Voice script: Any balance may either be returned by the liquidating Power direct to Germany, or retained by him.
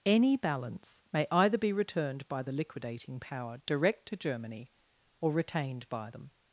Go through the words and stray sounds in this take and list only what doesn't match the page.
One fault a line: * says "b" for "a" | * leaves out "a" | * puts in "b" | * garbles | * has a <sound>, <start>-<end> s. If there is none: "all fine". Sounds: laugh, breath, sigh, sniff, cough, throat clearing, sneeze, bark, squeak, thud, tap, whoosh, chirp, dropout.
* says "them" for "him"